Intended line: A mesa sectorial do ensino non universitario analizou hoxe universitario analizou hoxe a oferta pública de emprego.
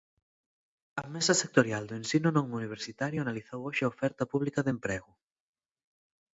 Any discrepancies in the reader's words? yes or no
yes